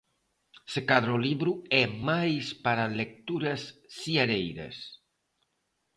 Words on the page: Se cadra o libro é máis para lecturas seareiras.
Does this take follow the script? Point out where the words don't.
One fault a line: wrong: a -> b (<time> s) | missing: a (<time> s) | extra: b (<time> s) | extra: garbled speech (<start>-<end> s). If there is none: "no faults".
no faults